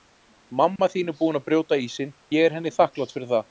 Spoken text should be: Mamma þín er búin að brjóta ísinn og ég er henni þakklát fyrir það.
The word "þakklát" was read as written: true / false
true